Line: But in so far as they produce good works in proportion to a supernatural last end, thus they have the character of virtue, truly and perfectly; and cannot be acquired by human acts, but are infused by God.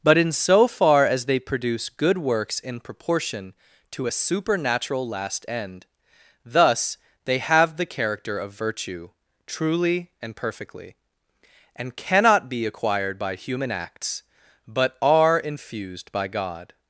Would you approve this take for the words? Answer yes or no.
yes